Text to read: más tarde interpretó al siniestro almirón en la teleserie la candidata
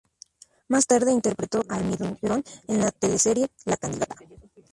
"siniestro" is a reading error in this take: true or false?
true